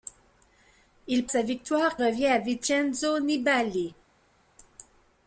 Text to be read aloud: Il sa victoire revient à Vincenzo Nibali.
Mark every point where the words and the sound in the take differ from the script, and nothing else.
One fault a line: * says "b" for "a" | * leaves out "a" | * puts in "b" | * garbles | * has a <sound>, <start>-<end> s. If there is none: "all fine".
all fine